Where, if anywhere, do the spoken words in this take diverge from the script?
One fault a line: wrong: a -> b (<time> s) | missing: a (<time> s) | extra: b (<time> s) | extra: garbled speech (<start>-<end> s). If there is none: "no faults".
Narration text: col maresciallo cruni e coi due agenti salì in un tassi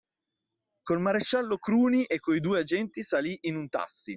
no faults